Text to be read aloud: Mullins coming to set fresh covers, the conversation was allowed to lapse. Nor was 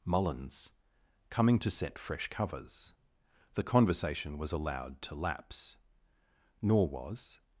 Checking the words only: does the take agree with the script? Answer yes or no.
yes